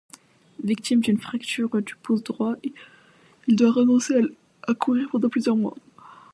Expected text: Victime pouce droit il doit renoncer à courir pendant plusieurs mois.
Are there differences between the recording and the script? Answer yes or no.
yes